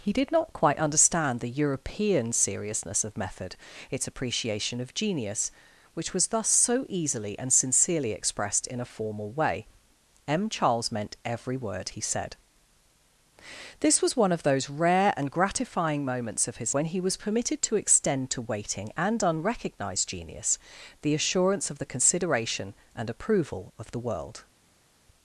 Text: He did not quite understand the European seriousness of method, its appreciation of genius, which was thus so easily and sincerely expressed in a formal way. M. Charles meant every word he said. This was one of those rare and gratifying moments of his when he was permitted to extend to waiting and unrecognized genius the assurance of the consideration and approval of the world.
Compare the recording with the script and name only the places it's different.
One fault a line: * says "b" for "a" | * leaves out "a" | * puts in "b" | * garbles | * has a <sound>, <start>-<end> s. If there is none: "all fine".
all fine